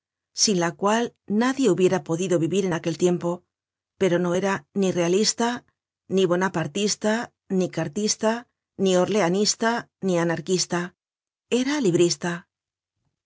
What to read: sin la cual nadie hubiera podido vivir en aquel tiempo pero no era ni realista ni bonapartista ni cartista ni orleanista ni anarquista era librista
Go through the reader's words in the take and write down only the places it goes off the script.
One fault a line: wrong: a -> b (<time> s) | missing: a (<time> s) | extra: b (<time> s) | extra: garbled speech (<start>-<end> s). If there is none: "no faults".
no faults